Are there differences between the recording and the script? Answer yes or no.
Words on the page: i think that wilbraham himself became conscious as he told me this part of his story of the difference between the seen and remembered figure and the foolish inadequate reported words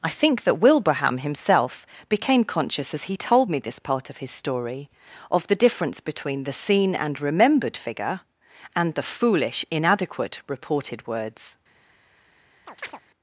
no